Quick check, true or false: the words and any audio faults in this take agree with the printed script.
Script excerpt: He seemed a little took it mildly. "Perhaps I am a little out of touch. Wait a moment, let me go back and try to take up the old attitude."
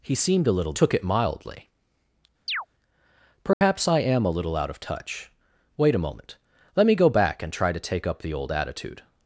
false